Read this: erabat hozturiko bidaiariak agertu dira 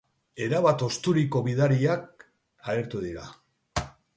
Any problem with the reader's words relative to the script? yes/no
no